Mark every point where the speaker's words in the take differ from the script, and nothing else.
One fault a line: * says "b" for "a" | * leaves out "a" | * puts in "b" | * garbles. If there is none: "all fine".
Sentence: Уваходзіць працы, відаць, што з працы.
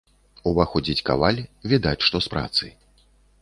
* says "каваль" for "працы"